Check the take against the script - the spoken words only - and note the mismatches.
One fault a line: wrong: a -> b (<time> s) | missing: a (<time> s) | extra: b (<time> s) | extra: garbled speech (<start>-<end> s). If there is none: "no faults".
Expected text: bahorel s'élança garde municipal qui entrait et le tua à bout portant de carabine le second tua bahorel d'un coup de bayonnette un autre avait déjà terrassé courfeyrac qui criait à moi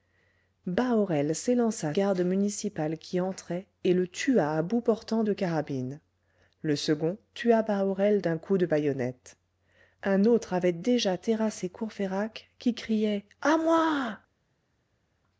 no faults